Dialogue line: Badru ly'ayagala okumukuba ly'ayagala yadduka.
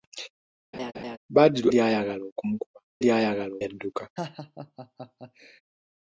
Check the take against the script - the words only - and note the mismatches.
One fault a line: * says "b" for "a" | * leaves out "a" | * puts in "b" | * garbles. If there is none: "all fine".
all fine